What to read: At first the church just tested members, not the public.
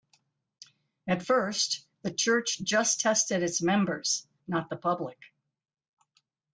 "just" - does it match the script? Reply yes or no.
yes